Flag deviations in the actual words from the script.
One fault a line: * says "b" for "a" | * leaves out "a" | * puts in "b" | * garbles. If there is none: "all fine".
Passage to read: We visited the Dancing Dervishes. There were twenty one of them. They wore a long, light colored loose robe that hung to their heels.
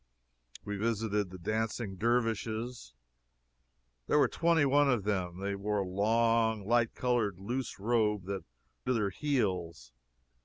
* leaves out "hung"